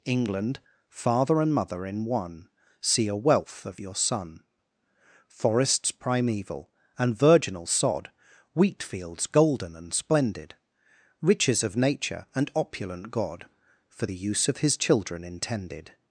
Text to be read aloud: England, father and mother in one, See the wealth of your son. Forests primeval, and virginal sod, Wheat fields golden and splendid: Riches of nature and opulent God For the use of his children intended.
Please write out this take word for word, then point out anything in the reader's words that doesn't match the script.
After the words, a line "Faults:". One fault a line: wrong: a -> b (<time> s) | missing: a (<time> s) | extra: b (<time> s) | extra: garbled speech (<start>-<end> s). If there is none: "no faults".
England, father and mother in one, See a wealth of your son. Forests primeval, and virginal sod, Wheat fields golden and splendid: Riches of nature and opulent God For the use of his children intended.
Faults:
wrong: the -> a (3.1 s)